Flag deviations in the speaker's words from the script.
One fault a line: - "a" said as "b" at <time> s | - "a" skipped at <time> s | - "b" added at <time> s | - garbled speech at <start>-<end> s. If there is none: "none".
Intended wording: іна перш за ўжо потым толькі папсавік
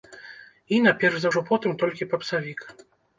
none